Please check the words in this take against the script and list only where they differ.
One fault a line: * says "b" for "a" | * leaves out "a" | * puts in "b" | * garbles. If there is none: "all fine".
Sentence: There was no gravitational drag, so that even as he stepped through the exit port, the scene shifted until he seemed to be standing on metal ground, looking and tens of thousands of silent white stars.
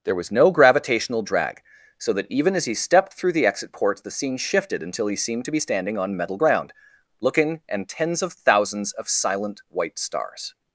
all fine